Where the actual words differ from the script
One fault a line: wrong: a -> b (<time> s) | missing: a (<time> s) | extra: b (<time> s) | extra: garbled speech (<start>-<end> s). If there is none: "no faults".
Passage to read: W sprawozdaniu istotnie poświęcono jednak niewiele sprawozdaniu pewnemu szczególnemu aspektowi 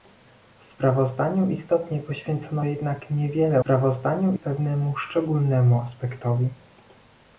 no faults